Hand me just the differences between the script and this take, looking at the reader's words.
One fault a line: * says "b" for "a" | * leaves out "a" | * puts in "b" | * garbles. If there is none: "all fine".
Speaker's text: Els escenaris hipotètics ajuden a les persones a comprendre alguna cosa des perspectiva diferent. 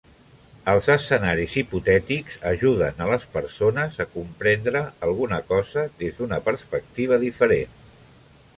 * puts in "d'una"